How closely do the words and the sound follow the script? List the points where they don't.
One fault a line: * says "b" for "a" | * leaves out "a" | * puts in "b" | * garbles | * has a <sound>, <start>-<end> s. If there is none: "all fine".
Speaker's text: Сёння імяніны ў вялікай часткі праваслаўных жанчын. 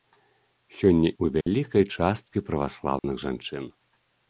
* leaves out "імяніны"
* has a dropout, 1.4-1.5 s
* has a dropout, 3.0-3.0 s